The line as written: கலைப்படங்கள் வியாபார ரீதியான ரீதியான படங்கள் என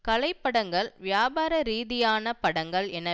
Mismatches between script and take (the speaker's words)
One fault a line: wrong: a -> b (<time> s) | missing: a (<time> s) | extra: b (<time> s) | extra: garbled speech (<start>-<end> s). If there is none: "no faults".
missing: ரீதியான (2.3 s)